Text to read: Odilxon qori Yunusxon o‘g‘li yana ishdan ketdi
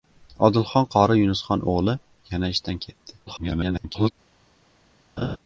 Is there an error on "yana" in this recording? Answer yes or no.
no